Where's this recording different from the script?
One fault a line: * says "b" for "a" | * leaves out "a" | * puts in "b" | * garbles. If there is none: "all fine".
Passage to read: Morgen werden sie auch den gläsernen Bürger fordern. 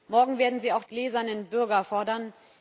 * leaves out "den"